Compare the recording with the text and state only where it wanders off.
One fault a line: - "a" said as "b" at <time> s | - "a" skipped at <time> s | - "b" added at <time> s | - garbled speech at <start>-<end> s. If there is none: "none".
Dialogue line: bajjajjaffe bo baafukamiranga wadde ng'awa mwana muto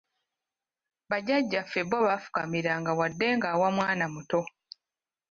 none